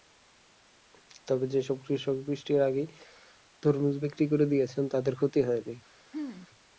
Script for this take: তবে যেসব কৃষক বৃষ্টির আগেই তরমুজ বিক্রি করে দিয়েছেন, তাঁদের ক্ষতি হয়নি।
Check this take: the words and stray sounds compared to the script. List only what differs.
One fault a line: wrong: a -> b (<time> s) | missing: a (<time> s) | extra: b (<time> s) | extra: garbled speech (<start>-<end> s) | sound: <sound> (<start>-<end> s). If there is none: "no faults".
sound: throat clearing (6.1-6.5 s)